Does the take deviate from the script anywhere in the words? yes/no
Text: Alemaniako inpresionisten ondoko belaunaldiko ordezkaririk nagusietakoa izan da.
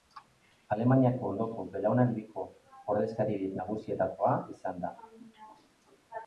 yes